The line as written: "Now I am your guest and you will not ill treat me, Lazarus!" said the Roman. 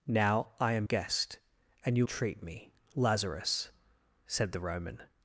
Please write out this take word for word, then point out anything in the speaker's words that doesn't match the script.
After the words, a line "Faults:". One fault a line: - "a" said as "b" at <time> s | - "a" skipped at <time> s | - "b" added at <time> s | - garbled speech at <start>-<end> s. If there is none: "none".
"Now I am guest and you treat me, Lazarus!" said the Roman.
Faults:
- "your" skipped at 0.9 s
- "will not ill" skipped at 2.1 s